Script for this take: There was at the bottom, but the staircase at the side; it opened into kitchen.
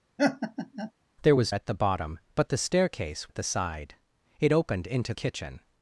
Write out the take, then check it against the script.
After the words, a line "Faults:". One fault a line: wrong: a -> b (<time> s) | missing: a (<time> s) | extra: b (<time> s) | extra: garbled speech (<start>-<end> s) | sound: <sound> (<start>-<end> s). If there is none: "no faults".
There was at the bottom, but the staircase at the side; it opened into kitchen.
Faults:
sound: laugh (0.2-0.9 s)